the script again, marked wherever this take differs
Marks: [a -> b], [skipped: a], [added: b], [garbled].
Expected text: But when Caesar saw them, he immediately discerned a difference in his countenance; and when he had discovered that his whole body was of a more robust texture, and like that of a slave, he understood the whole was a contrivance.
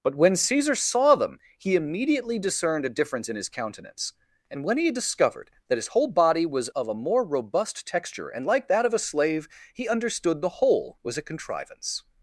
But when Caesar saw them, he immediately discerned a difference in his countenance; and when he had discovered that his whole body was of a more robust texture, and like that of a slave, he understood the whole was a contrivance.